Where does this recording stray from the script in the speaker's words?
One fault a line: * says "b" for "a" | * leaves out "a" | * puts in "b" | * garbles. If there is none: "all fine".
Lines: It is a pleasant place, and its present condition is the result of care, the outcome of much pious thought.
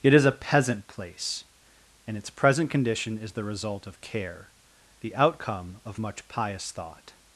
* says "peasant" for "pleasant"